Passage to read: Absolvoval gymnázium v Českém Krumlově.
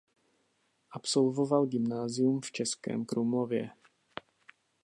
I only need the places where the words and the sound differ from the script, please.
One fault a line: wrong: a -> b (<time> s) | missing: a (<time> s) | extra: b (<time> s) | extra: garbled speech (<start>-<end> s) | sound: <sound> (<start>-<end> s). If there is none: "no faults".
no faults